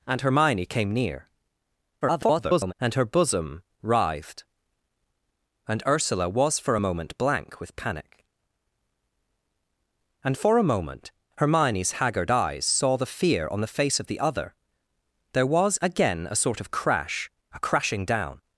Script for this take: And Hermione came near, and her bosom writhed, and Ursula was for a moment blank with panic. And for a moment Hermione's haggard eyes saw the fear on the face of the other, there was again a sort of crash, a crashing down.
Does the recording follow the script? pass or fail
fail